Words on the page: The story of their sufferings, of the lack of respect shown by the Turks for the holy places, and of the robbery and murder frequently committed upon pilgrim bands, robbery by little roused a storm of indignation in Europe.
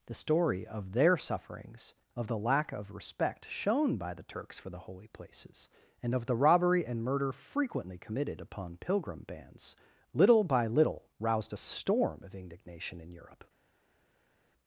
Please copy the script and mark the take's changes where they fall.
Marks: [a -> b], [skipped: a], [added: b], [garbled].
The story of their sufferings, of the lack of respect shown by the Turks for the holy places, and of the robbery and murder frequently committed upon pilgrim bands, [robbery -> little] by little roused a storm of indignation in Europe.